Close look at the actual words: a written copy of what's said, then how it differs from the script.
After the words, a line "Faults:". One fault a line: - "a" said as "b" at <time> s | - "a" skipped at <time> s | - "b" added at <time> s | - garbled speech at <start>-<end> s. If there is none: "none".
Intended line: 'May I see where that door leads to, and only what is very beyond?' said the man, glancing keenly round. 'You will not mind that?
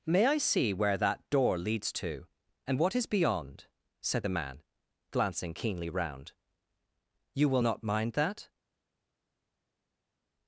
'May I see where that door leads to, and what is beyond?' said the man, glancing keenly round. 'You will not mind that?
Faults:
- "only" skipped at 2.8 s
- "very" skipped at 3.0 s